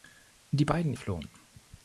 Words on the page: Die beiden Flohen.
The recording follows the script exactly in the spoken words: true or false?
true